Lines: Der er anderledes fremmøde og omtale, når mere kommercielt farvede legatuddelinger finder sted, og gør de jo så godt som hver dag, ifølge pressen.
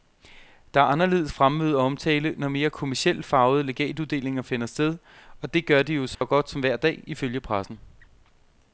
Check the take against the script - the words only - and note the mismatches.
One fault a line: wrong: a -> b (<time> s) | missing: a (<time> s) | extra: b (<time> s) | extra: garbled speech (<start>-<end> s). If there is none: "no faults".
extra: det (5.5 s)